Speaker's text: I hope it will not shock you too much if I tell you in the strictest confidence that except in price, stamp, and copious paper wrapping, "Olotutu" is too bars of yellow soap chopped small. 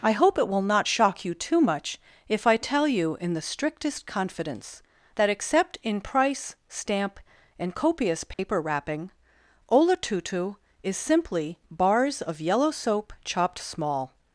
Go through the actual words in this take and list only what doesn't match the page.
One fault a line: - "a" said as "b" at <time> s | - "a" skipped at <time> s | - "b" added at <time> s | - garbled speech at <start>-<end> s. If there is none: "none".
- "too" said as "simply" at 11.0 s